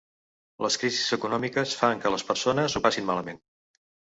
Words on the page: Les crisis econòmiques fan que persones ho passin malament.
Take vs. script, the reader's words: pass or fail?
fail